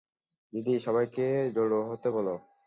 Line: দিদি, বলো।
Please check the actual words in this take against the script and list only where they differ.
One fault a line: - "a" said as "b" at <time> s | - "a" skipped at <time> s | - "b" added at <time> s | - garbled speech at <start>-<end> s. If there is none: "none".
- "সবাইকে জড়ো হতে" added at 0.8 s